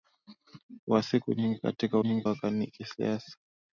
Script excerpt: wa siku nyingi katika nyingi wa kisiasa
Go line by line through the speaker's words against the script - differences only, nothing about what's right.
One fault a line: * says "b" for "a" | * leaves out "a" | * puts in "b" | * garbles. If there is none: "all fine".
all fine